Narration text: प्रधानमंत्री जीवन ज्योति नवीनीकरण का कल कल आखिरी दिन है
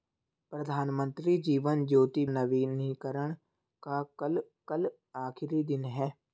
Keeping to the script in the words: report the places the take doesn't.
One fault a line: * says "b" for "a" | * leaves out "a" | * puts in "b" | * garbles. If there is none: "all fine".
all fine